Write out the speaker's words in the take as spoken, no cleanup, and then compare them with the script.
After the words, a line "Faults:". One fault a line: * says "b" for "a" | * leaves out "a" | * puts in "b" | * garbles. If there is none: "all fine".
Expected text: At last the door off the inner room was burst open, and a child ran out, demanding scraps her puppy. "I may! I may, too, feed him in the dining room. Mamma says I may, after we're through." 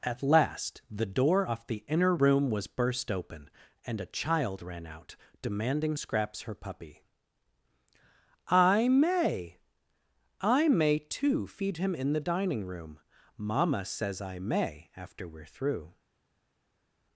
At last the door off the inner room was burst open, and a child ran out, demanding scraps her puppy. "I may! I may, too, feed him in the dining room. Mamma says I may, after we're through."
Faults:
all fine